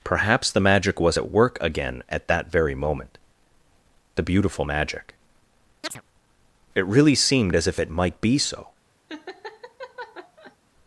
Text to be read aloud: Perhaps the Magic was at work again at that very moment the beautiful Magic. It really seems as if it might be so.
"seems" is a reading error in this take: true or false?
true